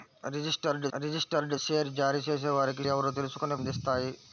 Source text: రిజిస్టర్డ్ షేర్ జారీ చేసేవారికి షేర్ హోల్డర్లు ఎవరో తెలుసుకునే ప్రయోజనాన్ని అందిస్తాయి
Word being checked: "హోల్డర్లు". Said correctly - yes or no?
no